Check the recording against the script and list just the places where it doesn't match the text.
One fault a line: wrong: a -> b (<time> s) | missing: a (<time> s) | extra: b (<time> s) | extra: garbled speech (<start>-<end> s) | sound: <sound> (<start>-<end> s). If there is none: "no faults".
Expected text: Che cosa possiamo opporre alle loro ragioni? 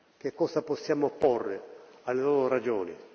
no faults